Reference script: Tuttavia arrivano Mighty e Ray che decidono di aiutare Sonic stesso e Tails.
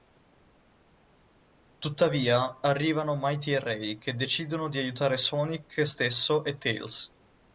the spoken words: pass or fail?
pass